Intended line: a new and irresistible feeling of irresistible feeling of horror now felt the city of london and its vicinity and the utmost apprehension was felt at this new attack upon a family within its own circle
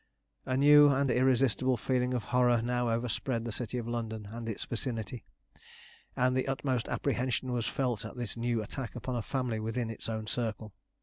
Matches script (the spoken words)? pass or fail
fail